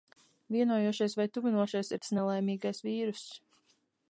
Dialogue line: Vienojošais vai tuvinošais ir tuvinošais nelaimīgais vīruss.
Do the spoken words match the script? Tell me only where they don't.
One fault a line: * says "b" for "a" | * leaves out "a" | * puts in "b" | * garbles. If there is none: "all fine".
* says "tas" for "tuvinošais"